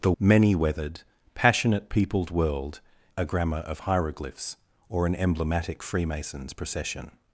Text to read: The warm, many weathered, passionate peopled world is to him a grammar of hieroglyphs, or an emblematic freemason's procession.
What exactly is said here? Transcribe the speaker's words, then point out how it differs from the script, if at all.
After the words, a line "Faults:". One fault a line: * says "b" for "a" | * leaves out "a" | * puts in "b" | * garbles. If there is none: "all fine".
The many weathered, passionate peopled world a grammar of hieroglyphs, or an emblematic freemason's procession.
Faults:
* leaves out "warm"
* leaves out "is to him"